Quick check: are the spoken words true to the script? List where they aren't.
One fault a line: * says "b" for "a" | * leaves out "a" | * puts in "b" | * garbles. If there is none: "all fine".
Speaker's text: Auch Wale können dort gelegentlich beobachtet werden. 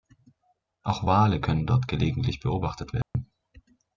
all fine